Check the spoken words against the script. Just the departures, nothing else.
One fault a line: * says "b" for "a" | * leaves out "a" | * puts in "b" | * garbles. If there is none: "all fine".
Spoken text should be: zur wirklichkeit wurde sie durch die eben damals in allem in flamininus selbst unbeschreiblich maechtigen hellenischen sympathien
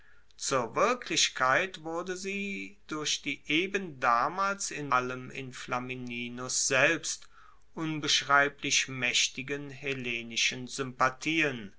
all fine